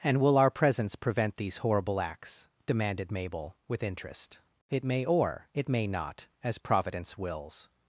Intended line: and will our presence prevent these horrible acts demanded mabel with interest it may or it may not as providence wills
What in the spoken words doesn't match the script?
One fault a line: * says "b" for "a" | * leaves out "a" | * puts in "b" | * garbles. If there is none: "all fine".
all fine